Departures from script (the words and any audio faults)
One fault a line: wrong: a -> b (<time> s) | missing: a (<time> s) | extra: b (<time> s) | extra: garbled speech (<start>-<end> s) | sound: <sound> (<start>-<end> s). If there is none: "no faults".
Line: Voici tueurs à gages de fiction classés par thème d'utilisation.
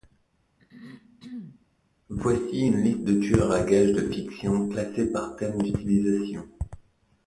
sound: throat clearing (0.6-1.7 s)
extra: une liste de (2.6 s)